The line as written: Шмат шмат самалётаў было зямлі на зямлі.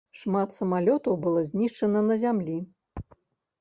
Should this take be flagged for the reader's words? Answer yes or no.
yes